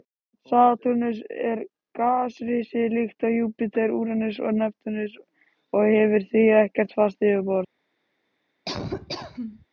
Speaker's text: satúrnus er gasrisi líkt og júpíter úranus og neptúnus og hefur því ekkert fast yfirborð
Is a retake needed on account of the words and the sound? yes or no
yes